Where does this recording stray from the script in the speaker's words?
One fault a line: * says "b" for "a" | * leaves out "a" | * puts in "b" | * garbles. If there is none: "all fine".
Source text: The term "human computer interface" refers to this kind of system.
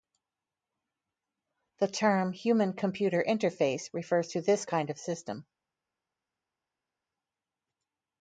all fine